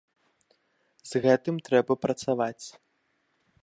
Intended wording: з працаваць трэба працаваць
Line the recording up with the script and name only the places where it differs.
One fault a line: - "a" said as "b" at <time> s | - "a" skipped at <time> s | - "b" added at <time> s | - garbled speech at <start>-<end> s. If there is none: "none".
- "працаваць" said as "гэтым" at 1.2 s